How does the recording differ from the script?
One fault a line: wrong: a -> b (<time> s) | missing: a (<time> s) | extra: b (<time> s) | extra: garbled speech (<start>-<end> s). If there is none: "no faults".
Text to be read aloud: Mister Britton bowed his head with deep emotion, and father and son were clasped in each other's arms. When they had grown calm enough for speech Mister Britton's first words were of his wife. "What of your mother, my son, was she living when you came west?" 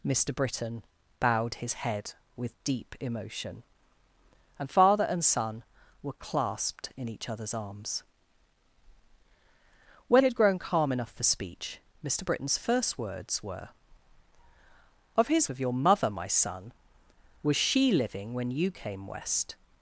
missing: they (10.2 s)
missing: wife What (15.5 s)